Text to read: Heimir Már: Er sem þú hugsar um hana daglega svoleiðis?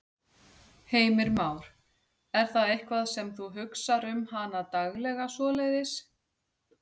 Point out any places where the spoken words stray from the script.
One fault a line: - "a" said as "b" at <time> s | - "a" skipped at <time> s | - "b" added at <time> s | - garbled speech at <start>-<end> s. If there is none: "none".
- "það eitthvað" added at 2.5 s